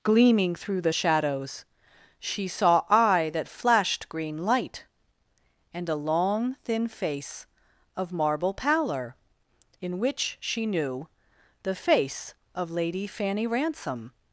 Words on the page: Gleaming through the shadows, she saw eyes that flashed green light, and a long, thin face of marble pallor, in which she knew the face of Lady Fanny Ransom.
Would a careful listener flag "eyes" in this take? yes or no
yes